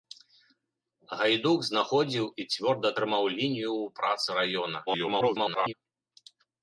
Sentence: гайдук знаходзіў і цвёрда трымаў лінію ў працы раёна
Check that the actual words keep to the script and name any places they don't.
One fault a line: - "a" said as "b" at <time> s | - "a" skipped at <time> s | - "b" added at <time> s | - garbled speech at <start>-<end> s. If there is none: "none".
- garbled speech at 4.9-5.7 s